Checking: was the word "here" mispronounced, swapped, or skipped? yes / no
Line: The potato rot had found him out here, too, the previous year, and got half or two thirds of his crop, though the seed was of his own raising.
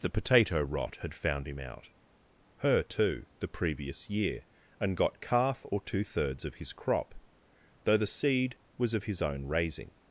yes